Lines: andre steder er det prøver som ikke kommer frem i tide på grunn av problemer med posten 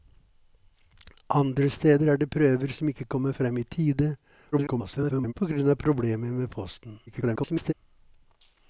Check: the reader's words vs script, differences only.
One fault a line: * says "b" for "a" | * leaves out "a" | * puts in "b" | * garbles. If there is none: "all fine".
* garbles
* garbles